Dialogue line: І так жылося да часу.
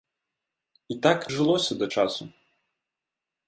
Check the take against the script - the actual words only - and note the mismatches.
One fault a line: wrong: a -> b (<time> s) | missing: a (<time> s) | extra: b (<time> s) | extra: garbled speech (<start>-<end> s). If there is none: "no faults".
no faults